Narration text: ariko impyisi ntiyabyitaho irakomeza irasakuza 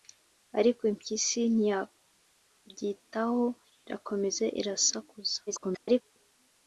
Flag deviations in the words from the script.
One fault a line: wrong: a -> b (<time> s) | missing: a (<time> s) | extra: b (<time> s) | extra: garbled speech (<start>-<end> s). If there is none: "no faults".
extra: garbled speech (5.5-6.0 s)